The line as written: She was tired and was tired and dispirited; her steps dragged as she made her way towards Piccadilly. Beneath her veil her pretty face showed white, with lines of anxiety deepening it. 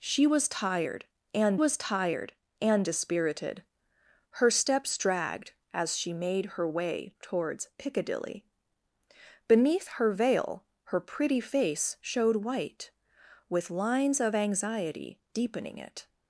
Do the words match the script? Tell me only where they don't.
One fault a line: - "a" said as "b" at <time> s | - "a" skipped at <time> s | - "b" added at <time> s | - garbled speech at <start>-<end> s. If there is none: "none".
none